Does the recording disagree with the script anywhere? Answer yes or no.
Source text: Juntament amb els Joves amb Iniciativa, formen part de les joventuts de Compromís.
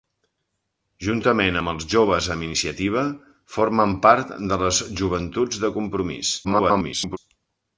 yes